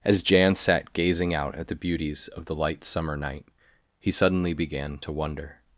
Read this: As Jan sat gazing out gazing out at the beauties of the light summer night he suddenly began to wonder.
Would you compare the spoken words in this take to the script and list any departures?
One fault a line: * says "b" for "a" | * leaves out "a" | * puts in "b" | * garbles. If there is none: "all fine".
* leaves out "gazing out"